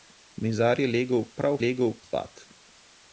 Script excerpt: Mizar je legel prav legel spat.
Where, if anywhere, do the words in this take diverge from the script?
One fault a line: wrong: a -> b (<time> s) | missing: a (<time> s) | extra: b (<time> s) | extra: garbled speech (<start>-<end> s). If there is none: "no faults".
no faults